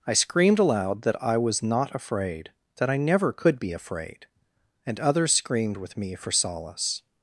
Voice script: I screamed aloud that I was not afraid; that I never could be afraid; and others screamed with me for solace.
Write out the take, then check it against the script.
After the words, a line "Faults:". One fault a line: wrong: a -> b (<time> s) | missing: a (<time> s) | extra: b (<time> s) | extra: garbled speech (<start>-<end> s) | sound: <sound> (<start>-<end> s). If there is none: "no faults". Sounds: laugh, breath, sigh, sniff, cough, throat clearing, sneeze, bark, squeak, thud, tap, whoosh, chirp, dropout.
I screamed aloud that I was not afraid; that I never could be afraid; and others screamed with me for solace.
Faults:
no faults